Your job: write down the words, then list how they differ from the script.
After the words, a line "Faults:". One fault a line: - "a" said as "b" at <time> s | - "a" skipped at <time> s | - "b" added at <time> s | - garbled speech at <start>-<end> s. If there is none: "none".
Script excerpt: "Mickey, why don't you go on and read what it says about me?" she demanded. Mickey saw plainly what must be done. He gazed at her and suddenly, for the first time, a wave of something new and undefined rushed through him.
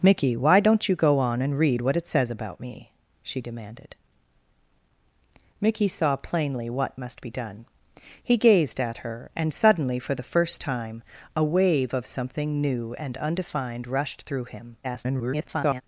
"Mickey, why don't you go on and read what it says about me?" she demanded. Mickey saw plainly what must be done. He gazed at her and suddenly, for the first time, a wave of something new and undefined rushed through him. [garbled]
Faults:
- garbled speech at 14.8-15.8 s